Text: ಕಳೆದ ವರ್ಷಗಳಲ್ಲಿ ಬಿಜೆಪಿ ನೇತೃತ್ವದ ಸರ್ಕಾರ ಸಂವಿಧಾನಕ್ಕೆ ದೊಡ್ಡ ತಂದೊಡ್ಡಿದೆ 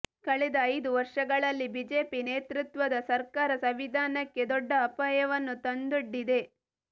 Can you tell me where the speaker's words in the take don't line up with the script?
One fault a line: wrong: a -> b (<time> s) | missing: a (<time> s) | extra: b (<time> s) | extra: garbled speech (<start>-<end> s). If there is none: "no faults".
extra: ಐದು (0.7 s)
extra: ಅಪಾಯವನ್ನು (4.9 s)